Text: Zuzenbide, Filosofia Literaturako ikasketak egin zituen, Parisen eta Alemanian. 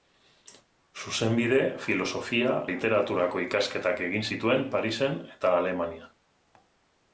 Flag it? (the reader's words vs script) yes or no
no